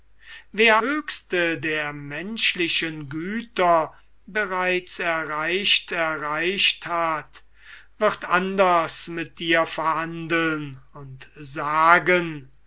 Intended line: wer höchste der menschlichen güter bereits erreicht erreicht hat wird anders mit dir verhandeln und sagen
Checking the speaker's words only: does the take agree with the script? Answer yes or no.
yes